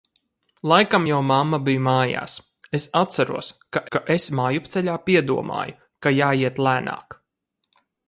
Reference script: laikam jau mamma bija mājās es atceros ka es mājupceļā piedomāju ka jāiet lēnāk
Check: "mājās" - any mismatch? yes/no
no